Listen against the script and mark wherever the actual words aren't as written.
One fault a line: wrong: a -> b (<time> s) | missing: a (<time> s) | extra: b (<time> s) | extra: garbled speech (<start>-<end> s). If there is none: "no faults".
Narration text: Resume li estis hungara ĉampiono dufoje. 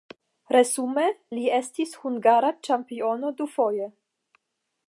no faults